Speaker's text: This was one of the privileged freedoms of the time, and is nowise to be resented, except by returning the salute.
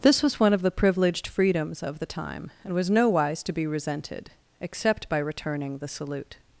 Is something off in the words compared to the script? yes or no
yes